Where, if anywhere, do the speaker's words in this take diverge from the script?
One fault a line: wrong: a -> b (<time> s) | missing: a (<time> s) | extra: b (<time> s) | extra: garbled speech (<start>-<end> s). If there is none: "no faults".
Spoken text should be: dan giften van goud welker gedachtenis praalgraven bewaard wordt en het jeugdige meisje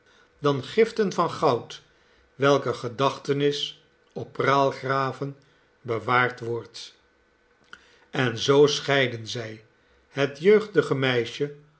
extra: op (4.1 s)
extra: zoo scheidden zij (8.4 s)